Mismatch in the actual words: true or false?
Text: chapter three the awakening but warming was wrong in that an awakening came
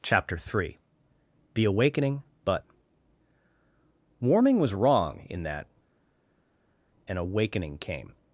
false